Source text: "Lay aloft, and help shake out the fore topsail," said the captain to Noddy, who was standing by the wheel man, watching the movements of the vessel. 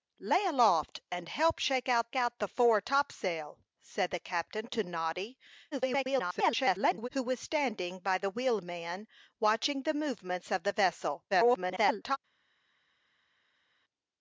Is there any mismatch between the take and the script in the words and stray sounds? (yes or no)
yes